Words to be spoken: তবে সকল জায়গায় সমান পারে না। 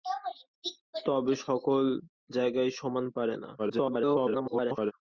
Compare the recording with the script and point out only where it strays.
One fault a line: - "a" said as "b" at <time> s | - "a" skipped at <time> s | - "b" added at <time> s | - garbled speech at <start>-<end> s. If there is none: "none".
- garbled speech at 3.6-4.9 s